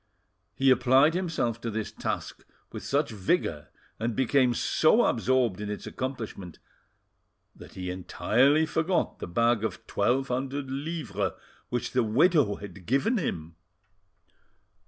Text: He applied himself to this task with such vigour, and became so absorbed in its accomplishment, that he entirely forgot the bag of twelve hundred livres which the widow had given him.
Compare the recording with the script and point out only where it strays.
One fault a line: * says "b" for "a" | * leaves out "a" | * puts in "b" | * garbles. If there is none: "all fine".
all fine